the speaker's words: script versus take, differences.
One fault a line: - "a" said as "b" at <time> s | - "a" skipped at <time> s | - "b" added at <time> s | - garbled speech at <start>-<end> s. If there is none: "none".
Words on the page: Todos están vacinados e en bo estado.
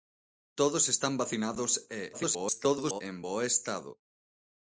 - garbled speech at 2.1-3.0 s